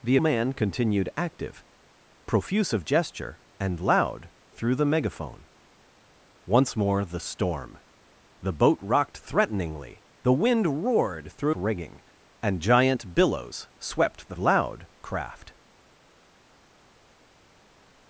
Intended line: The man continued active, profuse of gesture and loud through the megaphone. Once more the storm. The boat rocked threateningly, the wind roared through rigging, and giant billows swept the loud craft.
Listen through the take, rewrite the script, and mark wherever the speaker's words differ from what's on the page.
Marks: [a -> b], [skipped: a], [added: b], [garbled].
The man continued active, profuse of gesture and loud through the megaphone. Once more the storm. The boat rocked threateningly, the wind roared through rigging, and giant billows swept the loud craft.